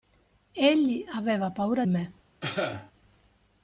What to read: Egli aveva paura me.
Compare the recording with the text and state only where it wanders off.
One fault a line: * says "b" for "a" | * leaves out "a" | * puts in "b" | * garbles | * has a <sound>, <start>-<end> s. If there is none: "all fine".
* has a cough, 2.4-2.9 s